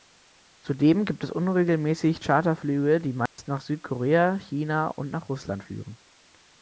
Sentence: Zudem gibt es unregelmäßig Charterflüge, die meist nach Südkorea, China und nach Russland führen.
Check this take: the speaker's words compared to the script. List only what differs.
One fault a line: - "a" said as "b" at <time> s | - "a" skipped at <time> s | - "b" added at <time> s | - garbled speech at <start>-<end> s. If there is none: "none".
none